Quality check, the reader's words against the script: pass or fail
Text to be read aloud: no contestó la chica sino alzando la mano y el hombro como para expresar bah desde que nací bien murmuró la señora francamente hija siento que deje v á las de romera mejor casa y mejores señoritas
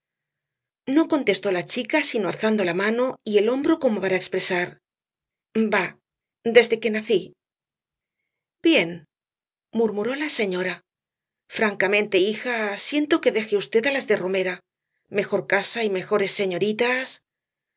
pass